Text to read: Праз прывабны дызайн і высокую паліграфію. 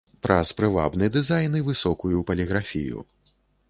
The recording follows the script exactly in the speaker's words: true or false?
true